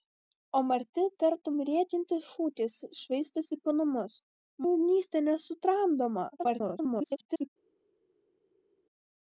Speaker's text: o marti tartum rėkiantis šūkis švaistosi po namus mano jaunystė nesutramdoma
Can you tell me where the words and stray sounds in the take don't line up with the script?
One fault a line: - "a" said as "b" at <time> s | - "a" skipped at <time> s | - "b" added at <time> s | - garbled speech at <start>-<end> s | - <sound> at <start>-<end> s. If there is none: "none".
- "mano" skipped at 4.2 s
- garbled speech at 6.4-7.5 s